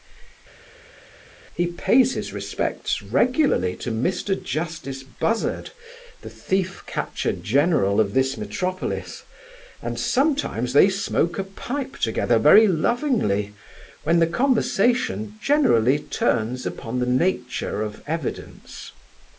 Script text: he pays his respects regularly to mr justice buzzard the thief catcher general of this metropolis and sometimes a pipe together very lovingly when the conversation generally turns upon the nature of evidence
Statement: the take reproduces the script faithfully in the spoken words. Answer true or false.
false